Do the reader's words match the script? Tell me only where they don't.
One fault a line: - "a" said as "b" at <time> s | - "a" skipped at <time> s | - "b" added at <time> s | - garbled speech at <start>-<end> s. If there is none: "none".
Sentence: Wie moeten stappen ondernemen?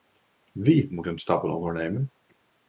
none